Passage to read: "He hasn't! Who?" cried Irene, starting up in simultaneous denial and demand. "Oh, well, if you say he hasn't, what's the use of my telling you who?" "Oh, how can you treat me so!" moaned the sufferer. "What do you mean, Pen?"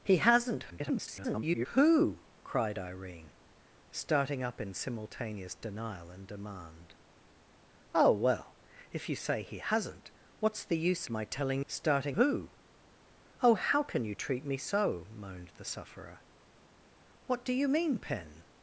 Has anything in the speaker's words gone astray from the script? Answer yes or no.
yes